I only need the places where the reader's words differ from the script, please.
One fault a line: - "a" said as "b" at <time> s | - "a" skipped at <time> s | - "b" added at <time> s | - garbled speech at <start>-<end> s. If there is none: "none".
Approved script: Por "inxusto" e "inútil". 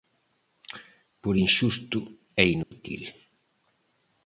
none